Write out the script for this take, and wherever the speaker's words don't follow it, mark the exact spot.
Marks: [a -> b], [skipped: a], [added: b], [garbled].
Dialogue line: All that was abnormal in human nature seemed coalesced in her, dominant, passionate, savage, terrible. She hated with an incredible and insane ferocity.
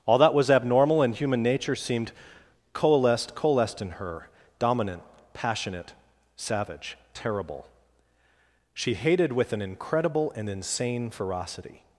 All that was abnormal in human nature seemed coalesced [added: coalesced] in her, dominant, passionate, savage, terrible. She hated with an incredible and insane ferocity.